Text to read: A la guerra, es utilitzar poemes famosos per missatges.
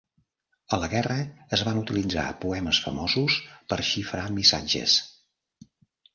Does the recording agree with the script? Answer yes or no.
no